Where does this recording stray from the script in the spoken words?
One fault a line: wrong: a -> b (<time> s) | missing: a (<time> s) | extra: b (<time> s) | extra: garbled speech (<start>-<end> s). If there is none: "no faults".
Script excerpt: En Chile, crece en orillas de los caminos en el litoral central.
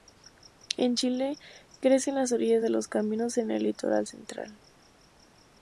extra: las (2.2 s)